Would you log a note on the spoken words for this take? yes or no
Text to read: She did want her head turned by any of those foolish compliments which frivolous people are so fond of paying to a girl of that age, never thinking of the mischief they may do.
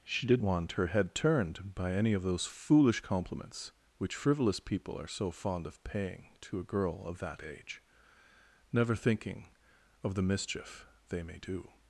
no